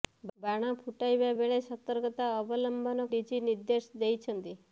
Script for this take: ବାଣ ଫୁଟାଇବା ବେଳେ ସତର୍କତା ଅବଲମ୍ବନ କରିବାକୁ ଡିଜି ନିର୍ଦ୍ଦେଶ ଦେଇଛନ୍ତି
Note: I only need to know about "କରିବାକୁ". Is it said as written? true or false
false